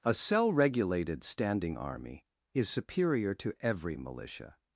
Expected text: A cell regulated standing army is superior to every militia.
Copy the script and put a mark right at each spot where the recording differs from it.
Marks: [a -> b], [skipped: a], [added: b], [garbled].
A cell regulated standing army is superior to every militia.